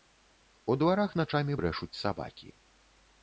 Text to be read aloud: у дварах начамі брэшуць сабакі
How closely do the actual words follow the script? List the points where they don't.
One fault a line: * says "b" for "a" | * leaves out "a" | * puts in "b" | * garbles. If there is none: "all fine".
all fine